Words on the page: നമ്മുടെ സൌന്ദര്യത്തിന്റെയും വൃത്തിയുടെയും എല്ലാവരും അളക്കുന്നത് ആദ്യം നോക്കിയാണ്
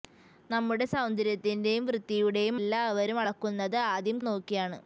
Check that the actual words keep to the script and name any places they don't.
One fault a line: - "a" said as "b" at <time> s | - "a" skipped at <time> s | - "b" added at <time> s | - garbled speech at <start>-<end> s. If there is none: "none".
none